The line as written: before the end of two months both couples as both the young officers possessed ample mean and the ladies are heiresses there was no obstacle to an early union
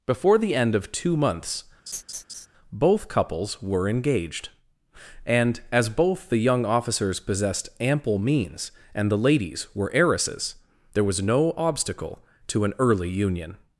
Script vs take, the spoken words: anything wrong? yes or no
yes